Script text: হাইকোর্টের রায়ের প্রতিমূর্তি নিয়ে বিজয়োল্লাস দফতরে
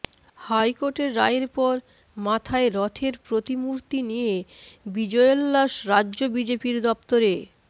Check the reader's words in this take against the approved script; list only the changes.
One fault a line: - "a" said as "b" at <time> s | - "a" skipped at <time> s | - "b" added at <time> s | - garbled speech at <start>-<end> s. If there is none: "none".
- "পর মাথায় রথের" added at 1.6 s
- "রাজ্য বিজেপির" added at 5.9 s